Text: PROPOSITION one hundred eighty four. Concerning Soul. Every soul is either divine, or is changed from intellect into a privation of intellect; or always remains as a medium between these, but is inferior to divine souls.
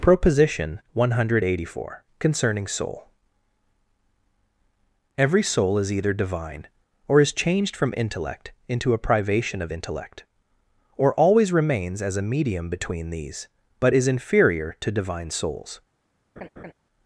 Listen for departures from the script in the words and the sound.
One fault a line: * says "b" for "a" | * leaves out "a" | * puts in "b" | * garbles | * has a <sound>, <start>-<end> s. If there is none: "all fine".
* has a laugh, 16.4-16.7 s